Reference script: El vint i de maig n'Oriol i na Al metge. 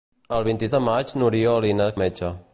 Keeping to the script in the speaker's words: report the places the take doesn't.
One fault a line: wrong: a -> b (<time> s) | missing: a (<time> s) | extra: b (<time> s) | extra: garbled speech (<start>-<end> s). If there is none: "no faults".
no faults